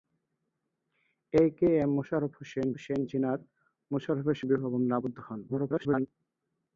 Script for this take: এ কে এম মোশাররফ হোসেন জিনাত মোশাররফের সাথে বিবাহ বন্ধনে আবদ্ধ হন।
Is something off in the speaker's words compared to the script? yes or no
yes